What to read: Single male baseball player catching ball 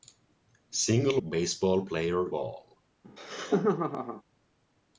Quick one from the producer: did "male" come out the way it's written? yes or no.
no